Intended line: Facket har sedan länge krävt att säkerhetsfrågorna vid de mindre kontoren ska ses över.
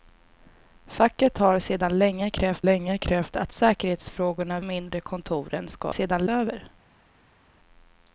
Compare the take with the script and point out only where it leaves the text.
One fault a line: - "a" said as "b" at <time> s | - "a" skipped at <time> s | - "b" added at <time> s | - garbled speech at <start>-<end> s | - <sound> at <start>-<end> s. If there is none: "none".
- "länge krävt" added at 2.6 s
- "vid de" skipped at 4.6 s
- "ses" said as "sedan" at 5.9 s